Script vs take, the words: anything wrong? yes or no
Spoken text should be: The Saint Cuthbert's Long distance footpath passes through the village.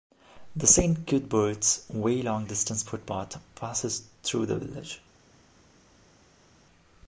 yes